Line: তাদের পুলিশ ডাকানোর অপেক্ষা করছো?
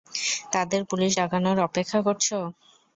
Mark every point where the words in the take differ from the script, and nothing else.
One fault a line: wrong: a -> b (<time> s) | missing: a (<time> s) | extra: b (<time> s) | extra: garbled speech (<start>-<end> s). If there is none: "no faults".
no faults